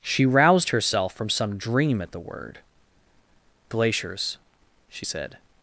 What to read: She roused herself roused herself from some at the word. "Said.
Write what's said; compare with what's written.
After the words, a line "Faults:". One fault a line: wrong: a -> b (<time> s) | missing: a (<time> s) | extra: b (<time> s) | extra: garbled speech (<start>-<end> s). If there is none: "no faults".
She roused herself from some dream at the word. "Glaciers?" she said.
Faults:
missing: roused herself (1.1 s)
extra: dream (1.6 s)
extra: Glaciers she (3.7 s)